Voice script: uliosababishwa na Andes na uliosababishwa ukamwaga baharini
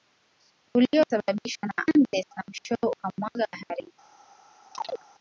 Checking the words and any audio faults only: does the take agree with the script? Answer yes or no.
no